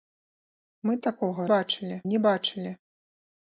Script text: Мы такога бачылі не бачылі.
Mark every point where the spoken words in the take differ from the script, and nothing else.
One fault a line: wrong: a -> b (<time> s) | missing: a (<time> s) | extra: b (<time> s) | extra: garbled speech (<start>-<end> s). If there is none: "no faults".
no faults